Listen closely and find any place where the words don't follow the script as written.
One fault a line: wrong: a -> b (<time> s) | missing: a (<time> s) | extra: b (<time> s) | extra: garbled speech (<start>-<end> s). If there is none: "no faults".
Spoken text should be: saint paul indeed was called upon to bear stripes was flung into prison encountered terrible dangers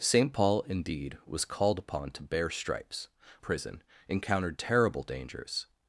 missing: was flung into (3.1 s)